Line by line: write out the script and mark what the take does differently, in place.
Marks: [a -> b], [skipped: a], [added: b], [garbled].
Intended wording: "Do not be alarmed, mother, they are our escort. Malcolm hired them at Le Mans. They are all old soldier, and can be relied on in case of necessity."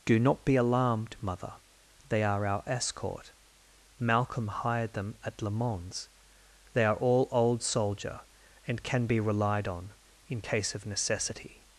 "Do not be alarmed, mother, they are our escort. Malcolm hired them at Le Mans. They are all old soldier, and can be relied on in case of necessity."